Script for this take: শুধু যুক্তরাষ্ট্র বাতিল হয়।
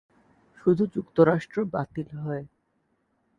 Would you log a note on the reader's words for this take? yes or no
no